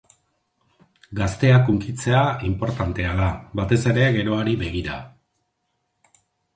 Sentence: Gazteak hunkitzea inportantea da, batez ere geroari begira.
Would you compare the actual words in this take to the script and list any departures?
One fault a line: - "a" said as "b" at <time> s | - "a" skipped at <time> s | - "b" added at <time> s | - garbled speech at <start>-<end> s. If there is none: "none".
none